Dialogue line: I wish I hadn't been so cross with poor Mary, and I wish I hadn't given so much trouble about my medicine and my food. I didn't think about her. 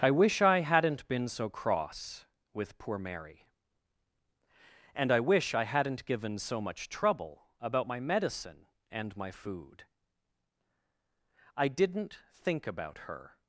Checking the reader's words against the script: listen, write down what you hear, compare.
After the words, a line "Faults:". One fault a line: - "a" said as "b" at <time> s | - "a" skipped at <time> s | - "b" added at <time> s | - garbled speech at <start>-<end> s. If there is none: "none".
I wish I hadn't been so cross with poor Mary, and I wish I hadn't given so much trouble about my medicine and my food. I didn't think about her.
Faults:
none